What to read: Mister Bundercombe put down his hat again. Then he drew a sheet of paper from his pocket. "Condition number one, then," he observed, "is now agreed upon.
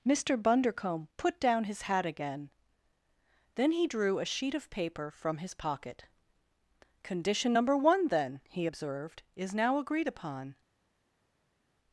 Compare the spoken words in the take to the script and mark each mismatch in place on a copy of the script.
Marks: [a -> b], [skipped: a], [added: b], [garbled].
Mister Bundercombe put down his hat again. Then he drew a sheet of paper from his pocket. "Condition number one, then," he observed, "is now agreed upon.